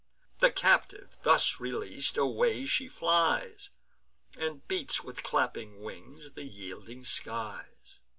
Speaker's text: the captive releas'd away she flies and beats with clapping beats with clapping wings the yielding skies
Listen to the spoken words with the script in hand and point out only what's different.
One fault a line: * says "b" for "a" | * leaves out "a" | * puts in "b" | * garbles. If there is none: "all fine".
* puts in "thus"
* leaves out "beats with clapping"